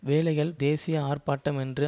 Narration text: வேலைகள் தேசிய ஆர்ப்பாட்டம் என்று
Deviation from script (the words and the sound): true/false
false